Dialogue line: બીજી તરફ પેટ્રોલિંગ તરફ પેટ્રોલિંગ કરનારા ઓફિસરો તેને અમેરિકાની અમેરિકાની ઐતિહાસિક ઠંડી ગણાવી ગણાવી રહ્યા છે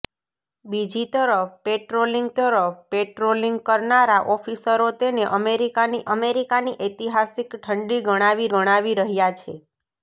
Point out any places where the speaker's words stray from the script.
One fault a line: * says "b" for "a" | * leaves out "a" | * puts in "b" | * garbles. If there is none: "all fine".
all fine